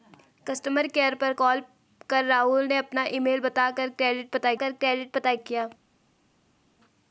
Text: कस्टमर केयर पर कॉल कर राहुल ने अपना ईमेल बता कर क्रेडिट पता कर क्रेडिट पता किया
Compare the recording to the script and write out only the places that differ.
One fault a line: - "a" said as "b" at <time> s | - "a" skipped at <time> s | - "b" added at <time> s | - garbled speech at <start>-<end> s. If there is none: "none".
none